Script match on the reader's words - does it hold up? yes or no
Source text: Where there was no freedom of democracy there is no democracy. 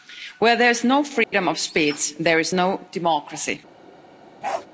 no